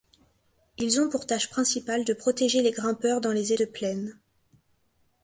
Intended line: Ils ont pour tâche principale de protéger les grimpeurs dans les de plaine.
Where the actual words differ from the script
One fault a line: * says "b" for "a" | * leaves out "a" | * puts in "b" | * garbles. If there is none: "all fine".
all fine